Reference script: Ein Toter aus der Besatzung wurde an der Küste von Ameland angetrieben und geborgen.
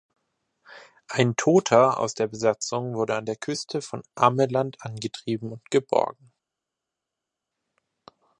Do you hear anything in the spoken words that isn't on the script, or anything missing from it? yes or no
no